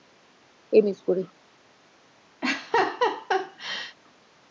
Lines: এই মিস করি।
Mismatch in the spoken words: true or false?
false